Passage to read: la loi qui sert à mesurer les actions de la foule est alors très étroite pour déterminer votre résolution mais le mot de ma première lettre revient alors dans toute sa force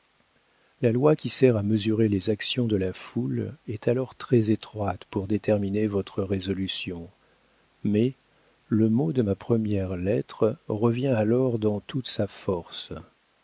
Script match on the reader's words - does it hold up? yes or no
yes